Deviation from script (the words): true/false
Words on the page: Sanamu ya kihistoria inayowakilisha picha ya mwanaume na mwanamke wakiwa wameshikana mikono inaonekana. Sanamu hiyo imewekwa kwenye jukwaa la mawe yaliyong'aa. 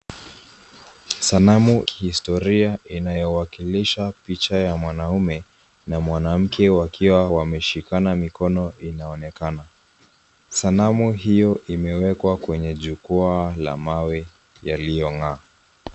true